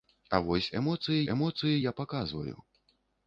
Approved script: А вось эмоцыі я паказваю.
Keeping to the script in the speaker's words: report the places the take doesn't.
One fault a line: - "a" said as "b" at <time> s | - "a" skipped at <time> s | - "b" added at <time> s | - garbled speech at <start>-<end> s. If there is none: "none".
- "эмоцыі" added at 1.3 s